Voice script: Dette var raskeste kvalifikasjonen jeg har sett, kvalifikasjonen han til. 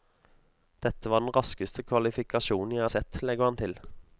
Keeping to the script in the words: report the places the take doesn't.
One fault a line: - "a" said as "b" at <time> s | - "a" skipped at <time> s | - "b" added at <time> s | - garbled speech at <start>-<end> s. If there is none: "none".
- "den" added at 1.2 s
- "kvalifikasjonen" said as "legger" at 3.2 s